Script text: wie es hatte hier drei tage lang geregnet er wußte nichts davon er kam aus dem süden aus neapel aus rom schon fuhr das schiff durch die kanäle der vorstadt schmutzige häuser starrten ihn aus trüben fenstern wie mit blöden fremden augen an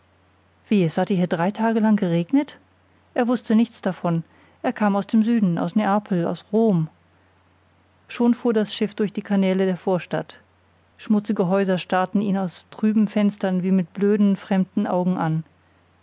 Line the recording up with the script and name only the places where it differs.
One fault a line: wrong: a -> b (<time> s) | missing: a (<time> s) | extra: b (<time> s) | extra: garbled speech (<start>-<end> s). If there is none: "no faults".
no faults